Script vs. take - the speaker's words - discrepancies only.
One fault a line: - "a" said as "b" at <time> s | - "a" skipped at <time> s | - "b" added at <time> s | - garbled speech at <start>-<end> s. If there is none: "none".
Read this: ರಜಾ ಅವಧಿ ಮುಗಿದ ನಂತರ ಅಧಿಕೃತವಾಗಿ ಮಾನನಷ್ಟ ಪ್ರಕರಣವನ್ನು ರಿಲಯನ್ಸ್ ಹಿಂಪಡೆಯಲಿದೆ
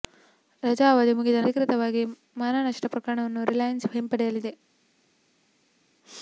- "ನಂತರ" skipped at 1.4 s